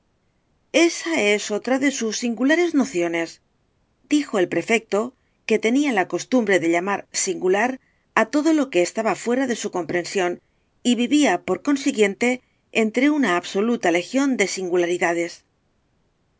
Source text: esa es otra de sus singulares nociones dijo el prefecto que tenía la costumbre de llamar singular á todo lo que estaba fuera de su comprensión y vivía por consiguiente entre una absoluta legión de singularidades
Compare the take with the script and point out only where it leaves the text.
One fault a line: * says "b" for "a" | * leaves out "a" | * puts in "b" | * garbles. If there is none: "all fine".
all fine